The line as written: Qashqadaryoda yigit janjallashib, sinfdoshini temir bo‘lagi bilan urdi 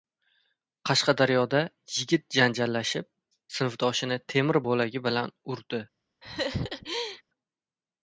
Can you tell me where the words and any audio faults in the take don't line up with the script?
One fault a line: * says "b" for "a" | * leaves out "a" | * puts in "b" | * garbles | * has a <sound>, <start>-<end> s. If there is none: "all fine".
* has a laugh, 6.2-7.2 s